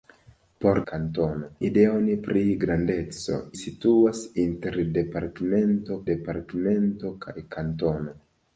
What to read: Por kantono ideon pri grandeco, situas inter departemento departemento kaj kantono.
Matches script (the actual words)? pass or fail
pass